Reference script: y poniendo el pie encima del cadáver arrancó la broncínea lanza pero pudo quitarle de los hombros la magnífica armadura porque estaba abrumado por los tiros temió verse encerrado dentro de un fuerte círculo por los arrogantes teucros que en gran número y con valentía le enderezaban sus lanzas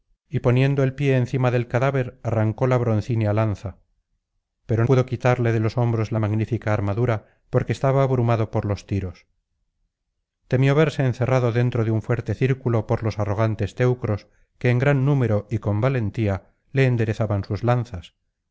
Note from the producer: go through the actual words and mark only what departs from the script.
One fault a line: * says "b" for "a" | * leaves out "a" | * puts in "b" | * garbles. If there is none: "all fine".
all fine